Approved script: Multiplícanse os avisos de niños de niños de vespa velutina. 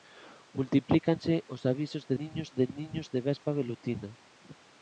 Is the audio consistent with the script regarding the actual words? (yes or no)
yes